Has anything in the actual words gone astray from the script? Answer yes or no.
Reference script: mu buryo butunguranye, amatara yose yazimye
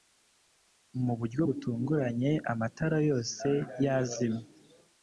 no